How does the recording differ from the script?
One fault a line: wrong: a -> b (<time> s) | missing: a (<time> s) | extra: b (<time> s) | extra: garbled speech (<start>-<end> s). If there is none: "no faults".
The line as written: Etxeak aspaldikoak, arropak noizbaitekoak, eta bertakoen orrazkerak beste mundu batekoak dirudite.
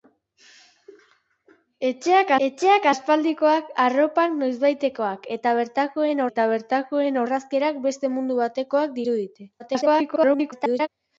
extra: etxeak (2.5 s)
extra: eta bertakoen (6.3 s)
extra: garbled speech (9.6-10.9 s)